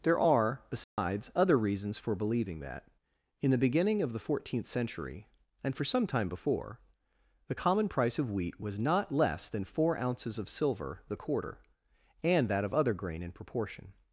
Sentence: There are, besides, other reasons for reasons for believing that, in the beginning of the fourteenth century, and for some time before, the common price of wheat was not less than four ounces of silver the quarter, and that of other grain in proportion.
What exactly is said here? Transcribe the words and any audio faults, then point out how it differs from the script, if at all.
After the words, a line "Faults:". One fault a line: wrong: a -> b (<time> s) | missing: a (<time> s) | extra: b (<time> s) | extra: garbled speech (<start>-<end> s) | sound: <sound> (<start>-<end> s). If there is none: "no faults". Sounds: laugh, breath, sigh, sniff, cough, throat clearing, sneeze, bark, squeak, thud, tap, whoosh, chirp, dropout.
There are, besides, other reasons for believing that, in the beginning of the fourteenth century, and for some time before, the common price of wheat was not less than four ounces of silver the quarter, and that of other grain in proportion.
Faults:
sound: dropout (0.8-1.0 s)
missing: reasons for (2.1 s)